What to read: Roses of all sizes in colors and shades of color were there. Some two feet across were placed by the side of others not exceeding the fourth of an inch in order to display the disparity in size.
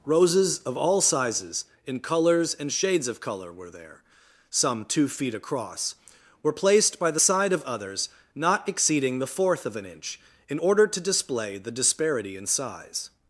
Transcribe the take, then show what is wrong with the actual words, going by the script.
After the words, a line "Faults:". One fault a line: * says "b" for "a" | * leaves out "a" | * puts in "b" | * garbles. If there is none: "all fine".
Roses of all sizes in colors and shades of color were there. Some two feet across were placed by the side of others not exceeding the fourth of an inch in order to display the disparity in size.
Faults:
all fine